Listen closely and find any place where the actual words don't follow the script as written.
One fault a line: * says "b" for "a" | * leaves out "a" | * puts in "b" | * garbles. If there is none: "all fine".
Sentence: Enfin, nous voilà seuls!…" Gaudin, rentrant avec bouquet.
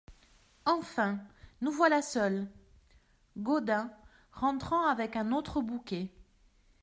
* puts in "un autre"